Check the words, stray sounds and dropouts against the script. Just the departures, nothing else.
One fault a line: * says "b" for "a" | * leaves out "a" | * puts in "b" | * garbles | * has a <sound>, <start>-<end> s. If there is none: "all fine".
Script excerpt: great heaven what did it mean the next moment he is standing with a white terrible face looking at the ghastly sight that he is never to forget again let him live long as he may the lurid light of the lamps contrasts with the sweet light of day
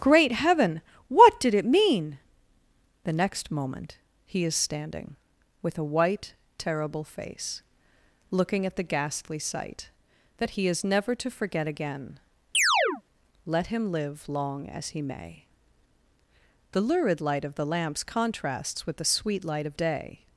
* has a chirp, 12.5-13.0 s